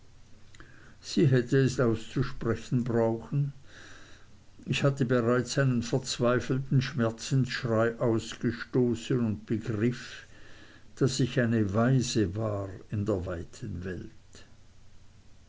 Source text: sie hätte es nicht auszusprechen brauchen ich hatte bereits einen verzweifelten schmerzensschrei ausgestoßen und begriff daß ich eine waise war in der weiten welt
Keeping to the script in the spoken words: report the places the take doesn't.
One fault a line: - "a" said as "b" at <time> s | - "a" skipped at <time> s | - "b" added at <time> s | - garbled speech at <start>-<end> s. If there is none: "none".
- "nicht" skipped at 1.8 s